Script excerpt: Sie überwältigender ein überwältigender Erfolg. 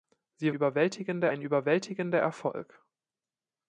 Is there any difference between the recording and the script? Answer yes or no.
no